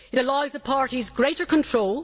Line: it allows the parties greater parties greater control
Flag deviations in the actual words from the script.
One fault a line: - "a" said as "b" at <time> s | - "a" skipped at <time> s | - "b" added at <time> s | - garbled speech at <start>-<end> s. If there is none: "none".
- "parties greater" skipped at 1.4 s